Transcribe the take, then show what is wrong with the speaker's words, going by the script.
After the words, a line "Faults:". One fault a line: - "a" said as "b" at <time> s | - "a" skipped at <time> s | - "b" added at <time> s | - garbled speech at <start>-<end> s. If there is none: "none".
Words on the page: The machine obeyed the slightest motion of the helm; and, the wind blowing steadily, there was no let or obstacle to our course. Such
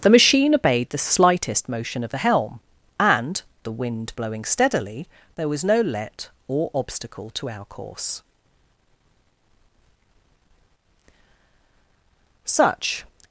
The machine obeyed the slightest motion of the helm; and, the wind blowing steadily, there was no let or obstacle to our course. Such
Faults:
none